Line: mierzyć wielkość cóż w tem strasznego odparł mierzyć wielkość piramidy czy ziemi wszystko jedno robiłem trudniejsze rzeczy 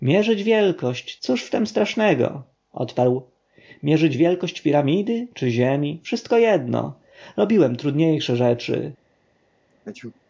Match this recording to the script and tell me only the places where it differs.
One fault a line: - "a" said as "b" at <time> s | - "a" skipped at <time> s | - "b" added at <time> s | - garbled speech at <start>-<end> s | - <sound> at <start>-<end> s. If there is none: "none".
- sneeze at 9.7-10.2 s